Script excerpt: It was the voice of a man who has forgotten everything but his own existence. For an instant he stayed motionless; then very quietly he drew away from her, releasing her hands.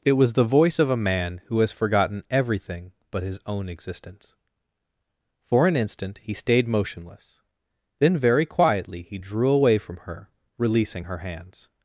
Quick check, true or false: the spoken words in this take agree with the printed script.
true